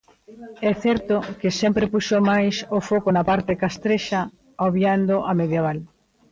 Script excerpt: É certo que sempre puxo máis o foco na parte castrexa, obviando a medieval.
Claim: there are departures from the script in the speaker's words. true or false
false